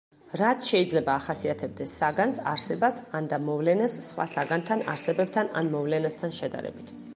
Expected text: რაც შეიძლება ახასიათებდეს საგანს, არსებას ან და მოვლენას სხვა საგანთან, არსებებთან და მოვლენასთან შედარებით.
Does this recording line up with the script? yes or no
no